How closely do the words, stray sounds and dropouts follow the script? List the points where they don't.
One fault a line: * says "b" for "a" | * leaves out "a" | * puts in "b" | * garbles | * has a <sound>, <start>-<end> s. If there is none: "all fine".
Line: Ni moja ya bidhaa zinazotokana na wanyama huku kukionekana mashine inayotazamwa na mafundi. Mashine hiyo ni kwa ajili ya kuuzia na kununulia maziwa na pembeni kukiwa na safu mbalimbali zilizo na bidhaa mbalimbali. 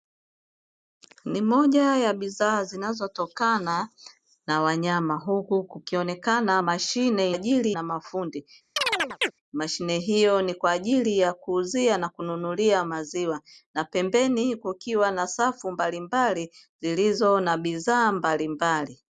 * says "ajili" for "inayotazamwa"
* has a chirp, 8.8-9.3 s